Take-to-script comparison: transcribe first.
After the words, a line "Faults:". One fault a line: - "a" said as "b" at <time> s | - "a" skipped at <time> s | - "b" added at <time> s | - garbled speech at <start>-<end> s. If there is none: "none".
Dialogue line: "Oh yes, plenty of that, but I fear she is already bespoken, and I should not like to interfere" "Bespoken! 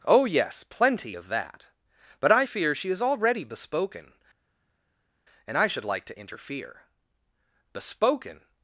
"Oh yes, plenty of that, but I fear she is already bespoken, and I should like to interfere" "Bespoken!
Faults:
- "not" skipped at 5.8 s